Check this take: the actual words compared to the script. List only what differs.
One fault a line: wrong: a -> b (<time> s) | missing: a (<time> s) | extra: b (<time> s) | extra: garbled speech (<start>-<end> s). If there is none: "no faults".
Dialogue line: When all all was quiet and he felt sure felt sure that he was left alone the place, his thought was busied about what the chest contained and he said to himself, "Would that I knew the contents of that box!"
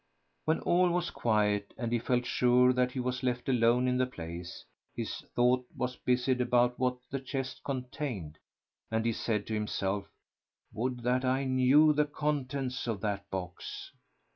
missing: all (0.9 s)
missing: felt sure (2.7 s)
extra: in (3.9 s)